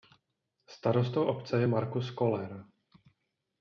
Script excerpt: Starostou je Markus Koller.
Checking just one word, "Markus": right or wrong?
right